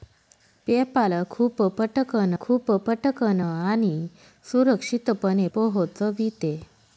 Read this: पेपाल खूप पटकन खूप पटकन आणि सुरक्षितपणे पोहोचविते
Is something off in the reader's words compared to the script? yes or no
no